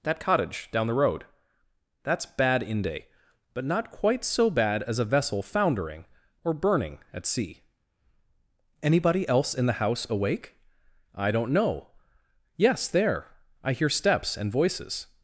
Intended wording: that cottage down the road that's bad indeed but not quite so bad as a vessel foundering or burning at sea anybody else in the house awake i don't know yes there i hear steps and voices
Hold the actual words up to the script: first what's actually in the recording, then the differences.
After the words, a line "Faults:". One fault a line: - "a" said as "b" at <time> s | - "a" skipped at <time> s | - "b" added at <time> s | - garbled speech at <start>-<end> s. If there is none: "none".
that cottage down the road that's bad inde but not quite so bad as a vessel foundering or burning at sea anybody else in the house awake i don't know yes there i hear steps and voices
Faults:
- "indeed" said as "inde" at 2.6 s